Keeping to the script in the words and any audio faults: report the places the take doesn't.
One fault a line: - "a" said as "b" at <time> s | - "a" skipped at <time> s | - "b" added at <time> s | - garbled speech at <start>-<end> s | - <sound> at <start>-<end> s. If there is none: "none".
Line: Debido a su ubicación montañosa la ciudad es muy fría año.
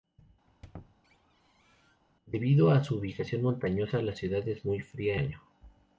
- squeak at 0.5-2.0 s